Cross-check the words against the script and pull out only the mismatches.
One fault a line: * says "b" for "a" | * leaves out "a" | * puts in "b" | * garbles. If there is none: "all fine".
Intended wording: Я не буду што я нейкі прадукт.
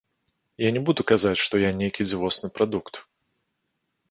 * puts in "казаць"
* puts in "дзівосны"